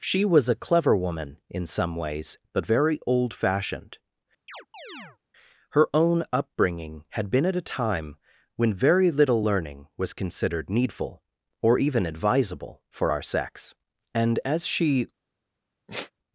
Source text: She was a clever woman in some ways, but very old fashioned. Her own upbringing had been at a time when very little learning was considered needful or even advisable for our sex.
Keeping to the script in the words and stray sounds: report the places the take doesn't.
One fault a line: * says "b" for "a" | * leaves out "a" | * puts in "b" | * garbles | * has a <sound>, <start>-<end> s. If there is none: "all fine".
* has a chirp, 4.5-5.2 s
* puts in "And as she"
* has a sigh, 15.9-16.1 s